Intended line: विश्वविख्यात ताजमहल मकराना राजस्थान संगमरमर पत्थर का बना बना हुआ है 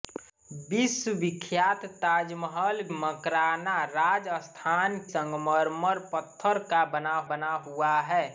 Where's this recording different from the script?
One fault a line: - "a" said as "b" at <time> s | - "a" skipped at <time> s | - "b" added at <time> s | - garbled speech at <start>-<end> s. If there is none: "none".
none